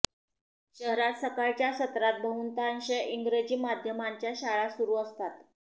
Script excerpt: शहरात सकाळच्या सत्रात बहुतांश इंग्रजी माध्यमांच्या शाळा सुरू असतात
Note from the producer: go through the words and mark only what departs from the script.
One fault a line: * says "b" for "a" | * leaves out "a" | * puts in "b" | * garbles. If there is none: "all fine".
all fine